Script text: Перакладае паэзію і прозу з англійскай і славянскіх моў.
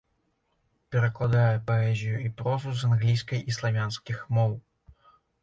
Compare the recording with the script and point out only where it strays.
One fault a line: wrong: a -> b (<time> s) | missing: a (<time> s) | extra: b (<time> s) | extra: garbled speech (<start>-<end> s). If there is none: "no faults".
no faults